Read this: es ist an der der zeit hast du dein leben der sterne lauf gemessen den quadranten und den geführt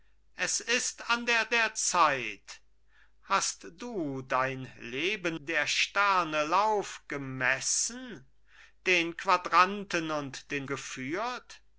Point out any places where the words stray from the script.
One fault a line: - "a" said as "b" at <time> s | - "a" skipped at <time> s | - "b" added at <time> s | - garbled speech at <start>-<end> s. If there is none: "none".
none